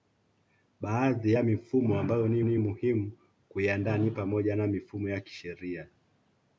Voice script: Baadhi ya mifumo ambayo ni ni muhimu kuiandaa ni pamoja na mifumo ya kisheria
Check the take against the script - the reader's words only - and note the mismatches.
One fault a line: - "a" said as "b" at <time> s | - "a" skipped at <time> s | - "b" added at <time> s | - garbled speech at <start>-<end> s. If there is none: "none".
none